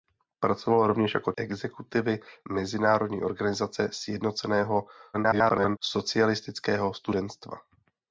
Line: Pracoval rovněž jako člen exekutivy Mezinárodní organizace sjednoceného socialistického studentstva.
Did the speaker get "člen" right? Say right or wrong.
wrong